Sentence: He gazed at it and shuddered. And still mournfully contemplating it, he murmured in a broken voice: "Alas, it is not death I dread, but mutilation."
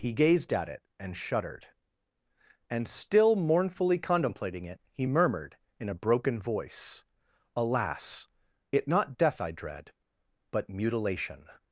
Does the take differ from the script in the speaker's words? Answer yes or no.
yes